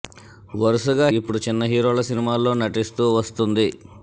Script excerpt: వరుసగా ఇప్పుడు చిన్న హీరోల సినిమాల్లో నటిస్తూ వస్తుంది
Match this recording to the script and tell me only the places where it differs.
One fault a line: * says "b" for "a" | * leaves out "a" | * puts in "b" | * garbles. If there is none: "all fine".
all fine